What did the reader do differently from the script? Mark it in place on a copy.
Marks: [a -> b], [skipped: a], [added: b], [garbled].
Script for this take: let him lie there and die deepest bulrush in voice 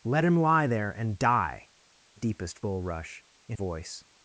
let him lie there and die deepest bulrush in voice